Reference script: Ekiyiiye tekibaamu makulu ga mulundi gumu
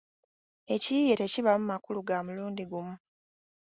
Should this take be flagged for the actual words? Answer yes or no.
no